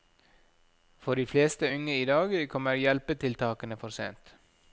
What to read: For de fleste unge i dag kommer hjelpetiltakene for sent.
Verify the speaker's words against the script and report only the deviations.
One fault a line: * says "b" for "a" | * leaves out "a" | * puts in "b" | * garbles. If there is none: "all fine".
all fine